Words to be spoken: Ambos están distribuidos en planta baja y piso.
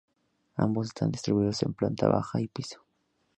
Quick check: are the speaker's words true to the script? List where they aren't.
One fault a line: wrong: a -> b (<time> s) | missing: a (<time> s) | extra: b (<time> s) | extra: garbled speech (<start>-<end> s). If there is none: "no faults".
no faults